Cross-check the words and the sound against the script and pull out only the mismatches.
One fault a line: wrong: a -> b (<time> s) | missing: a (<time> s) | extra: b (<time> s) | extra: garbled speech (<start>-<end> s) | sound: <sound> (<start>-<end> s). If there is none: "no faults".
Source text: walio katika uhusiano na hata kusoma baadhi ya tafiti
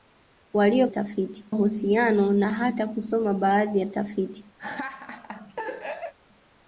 wrong: katika -> tafiti (0.9 s)
sound: laugh (4.6-6.1 s)